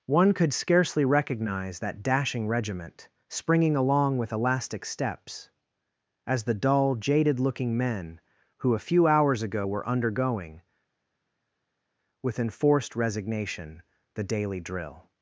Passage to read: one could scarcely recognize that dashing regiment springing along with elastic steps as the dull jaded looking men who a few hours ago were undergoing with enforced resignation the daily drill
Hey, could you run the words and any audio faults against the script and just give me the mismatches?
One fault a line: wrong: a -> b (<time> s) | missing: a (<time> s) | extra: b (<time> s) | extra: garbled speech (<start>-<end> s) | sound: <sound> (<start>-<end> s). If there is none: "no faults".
no faults